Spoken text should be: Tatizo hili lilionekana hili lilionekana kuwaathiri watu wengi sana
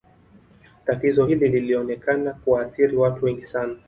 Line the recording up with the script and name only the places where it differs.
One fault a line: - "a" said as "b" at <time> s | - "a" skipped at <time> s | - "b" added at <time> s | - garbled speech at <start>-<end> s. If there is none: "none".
- "hili lilionekana" skipped at 2.3 s